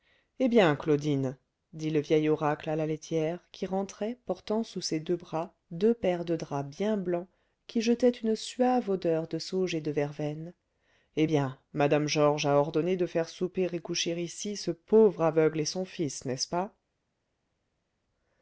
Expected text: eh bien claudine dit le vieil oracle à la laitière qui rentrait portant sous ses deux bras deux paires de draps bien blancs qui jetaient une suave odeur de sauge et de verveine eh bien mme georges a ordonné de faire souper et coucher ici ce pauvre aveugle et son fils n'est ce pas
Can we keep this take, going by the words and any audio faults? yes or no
yes